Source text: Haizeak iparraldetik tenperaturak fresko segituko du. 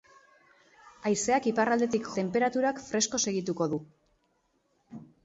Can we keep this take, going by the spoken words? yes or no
yes